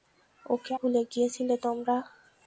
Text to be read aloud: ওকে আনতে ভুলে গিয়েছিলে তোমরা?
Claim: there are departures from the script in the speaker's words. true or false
true